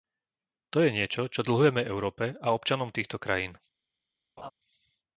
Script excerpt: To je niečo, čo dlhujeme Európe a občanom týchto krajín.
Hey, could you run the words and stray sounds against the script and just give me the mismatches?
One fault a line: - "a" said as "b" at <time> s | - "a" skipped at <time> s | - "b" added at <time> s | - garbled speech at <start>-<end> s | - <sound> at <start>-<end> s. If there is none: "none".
- laugh at 4.4-4.5 s